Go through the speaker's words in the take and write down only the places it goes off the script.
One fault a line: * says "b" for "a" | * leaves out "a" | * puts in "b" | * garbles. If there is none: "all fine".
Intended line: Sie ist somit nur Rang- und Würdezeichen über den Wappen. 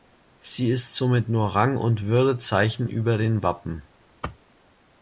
all fine